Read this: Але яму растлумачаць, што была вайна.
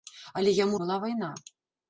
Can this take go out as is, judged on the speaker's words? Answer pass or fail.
fail